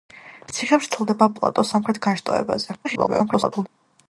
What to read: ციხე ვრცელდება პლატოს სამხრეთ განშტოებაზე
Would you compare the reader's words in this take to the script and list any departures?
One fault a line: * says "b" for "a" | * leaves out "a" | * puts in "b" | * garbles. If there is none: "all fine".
* garbles